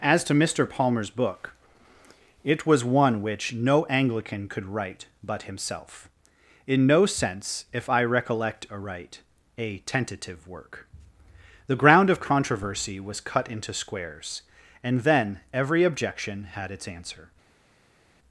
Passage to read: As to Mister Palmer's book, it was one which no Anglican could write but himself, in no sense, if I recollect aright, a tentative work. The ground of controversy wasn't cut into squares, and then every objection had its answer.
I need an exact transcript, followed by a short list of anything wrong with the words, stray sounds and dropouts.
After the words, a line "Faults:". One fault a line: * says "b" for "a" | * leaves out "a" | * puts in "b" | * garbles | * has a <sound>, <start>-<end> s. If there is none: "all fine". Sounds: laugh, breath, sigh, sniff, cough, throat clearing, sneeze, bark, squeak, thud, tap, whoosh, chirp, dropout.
As to Mister Palmer's book, it was one which no Anglican could write but himself, in no sense, if I recollect aright, a tentative work. The ground of controversy was cut into squares, and then every objection had its answer.
Faults:
* says "was" for "wasn't"